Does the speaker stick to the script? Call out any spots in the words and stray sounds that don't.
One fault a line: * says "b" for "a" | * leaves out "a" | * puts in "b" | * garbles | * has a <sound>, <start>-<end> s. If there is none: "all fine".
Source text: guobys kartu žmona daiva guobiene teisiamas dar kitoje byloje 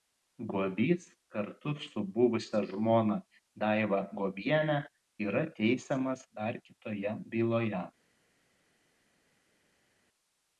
* puts in "su buvusia"
* puts in "yra"